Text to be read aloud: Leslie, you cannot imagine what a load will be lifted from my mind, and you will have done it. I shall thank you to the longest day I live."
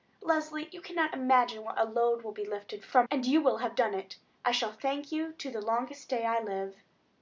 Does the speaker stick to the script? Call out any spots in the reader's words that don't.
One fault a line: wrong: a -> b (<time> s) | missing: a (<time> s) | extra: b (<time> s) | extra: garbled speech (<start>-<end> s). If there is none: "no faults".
missing: my mind (3.1 s)